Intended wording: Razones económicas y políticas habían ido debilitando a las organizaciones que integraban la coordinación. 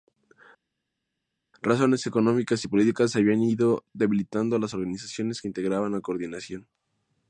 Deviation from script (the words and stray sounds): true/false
false